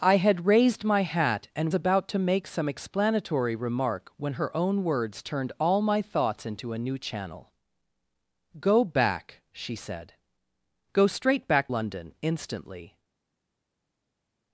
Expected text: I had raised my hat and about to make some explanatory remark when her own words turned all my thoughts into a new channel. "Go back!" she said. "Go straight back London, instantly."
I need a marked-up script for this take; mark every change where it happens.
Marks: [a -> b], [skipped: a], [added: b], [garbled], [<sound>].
I had raised my hat and about to make some explanatory remark when her own words turned all my thoughts into a new channel. "Go back!" she said. "Go straight back London, instantly."